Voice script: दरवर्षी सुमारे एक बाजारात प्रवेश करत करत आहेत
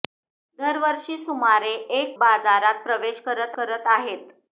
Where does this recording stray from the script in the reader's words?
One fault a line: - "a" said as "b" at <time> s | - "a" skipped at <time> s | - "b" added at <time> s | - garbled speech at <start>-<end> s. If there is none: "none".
none